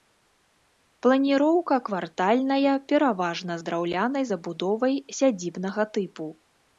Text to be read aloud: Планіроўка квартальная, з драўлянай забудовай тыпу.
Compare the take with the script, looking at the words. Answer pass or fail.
fail